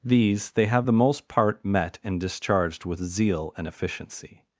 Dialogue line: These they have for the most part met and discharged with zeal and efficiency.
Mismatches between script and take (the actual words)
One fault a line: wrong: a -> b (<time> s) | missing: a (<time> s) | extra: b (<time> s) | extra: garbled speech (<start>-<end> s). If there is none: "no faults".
missing: for (0.9 s)